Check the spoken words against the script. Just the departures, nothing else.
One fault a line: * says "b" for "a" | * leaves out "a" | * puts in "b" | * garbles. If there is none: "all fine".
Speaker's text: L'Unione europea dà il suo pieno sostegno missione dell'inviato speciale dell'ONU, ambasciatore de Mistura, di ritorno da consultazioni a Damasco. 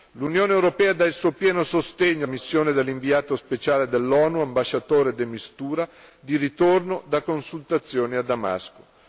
all fine